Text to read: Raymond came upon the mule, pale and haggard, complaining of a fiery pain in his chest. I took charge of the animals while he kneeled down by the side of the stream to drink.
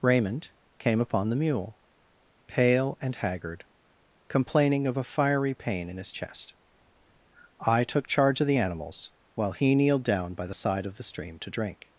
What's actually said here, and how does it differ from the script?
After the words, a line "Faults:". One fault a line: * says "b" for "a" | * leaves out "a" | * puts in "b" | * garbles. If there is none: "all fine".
Raymond came upon the mule, pale and haggard, complaining of a fiery pain in his chest. I took charge of the animals while he kneeled down by the side of the stream to drink.
Faults:
all fine